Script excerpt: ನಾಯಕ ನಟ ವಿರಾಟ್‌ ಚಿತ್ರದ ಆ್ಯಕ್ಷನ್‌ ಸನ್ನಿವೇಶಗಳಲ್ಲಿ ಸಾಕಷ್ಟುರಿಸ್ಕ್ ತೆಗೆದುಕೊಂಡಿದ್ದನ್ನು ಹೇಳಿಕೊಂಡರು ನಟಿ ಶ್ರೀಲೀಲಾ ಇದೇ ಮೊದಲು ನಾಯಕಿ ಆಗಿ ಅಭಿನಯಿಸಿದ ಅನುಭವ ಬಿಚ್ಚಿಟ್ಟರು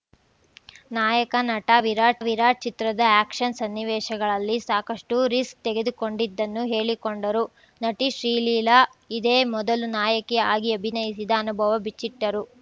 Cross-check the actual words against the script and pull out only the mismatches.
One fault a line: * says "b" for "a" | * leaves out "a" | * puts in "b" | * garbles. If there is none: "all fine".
* puts in "ವಿರಾಟ್"